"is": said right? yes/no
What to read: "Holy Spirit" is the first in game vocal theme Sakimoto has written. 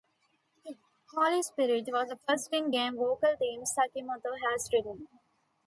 no